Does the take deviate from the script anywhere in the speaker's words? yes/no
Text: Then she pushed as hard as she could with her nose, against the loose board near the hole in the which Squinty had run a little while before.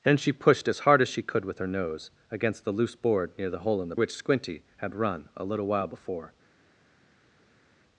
no